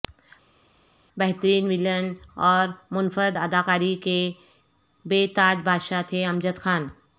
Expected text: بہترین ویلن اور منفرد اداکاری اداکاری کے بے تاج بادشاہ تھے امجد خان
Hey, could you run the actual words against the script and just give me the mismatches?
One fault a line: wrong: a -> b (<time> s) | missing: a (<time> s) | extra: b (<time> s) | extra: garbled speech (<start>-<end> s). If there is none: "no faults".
missing: اداکاری (3.9 s)